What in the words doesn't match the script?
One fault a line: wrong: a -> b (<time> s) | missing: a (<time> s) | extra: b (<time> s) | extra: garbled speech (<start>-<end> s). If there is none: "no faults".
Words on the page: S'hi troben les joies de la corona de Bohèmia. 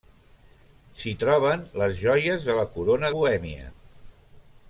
missing: de (3.1 s)